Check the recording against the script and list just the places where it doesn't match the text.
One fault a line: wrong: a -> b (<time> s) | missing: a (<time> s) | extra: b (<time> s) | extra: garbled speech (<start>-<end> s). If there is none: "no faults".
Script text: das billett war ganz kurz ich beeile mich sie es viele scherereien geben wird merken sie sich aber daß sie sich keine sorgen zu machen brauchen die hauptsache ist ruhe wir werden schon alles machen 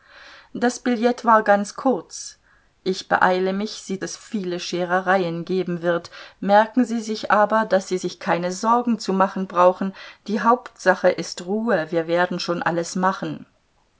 no faults